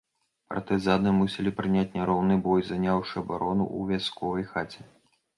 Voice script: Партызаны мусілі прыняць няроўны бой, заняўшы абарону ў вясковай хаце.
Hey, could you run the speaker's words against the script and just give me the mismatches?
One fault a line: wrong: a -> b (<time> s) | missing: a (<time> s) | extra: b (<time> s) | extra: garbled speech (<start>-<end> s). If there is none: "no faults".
no faults